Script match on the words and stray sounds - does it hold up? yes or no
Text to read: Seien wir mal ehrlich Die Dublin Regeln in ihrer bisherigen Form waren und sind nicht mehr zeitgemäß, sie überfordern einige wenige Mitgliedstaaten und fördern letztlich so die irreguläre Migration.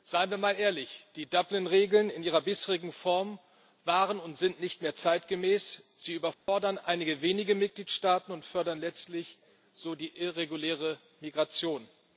no